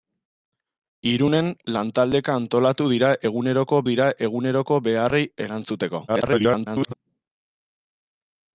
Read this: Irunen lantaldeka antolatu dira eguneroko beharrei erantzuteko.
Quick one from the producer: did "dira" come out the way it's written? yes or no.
yes